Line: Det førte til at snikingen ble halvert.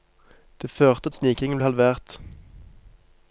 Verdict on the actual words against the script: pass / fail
fail